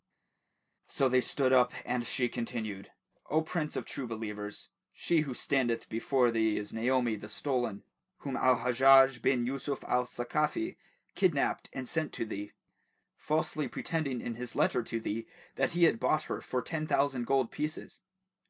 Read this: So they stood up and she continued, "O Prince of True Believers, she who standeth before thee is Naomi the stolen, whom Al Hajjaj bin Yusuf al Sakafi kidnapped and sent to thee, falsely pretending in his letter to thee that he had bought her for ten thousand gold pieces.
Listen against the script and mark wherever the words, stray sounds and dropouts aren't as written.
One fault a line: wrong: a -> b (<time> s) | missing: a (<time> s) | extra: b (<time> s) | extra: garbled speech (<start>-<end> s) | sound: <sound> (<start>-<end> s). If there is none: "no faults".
no faults